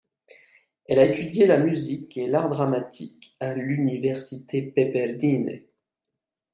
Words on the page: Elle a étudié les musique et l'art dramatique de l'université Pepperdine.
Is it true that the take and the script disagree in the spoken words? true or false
true